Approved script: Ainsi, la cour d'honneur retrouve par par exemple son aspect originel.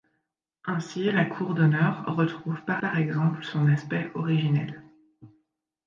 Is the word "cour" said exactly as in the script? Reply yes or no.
yes